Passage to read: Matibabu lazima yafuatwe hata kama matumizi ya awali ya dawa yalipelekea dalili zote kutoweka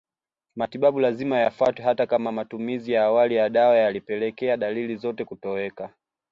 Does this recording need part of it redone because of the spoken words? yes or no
no